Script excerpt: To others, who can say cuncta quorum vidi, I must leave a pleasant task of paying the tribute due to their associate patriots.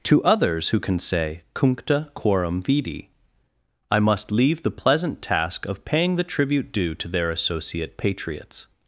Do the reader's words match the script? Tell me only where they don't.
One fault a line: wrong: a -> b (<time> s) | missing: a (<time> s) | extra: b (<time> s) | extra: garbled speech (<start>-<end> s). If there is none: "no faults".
wrong: a -> the (4.6 s)